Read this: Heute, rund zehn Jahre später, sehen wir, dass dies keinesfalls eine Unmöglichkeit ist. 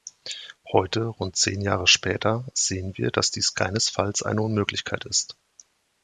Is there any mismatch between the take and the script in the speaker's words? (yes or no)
no